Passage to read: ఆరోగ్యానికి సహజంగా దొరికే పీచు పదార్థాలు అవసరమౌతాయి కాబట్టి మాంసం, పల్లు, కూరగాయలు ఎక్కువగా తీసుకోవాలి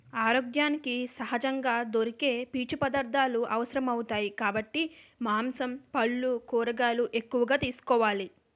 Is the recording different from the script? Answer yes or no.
no